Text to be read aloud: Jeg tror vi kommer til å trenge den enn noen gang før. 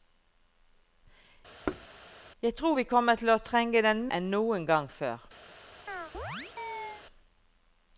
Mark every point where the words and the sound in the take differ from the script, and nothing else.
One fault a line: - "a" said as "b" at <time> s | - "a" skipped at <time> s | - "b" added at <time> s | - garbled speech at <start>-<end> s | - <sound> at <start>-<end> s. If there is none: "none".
- thud at 1.7-1.9 s
- chirp at 5.9-7.1 s